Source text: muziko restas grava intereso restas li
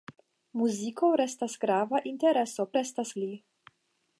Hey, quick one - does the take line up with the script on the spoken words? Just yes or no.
yes